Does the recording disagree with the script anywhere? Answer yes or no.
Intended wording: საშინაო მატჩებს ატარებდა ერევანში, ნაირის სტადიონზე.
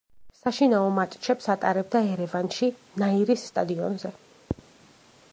no